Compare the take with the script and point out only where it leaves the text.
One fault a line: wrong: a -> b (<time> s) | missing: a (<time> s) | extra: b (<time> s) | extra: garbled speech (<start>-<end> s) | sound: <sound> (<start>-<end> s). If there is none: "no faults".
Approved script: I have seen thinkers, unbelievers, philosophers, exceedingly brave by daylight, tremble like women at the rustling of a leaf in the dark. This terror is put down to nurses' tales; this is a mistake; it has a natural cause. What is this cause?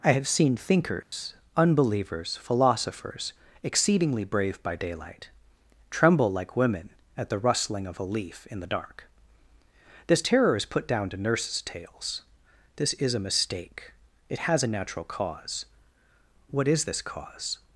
sound: dropout (1.0-1.1 s)